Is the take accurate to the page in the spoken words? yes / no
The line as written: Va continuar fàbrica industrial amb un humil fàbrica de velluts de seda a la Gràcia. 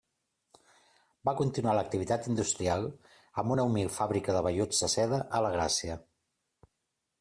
no